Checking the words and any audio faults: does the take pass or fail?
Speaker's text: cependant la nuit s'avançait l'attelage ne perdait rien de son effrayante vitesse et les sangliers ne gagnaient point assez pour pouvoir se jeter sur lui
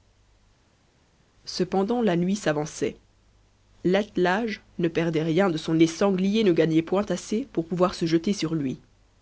fail